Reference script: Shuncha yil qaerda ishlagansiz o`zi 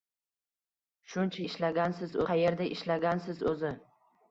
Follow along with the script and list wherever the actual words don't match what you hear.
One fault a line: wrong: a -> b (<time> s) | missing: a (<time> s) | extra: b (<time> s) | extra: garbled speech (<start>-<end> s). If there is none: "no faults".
wrong: yil -> ishlagansiz (1.5 s)